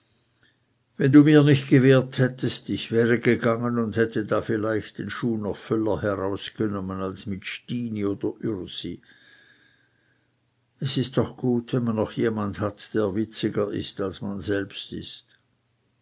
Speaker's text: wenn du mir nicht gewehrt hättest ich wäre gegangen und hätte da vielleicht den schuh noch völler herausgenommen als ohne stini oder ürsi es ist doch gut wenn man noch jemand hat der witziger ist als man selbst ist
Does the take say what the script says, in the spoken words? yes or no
no